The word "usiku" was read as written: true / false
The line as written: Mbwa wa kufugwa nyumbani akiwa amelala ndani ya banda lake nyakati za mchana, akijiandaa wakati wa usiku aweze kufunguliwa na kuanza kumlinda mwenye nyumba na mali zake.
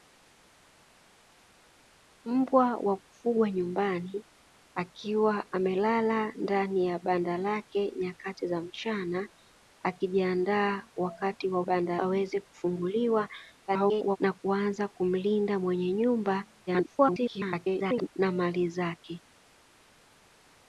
false